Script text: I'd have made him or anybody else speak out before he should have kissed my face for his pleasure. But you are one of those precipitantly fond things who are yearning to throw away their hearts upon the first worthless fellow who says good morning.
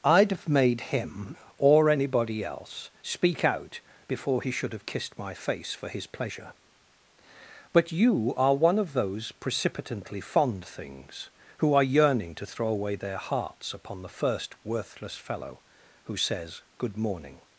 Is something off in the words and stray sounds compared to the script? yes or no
no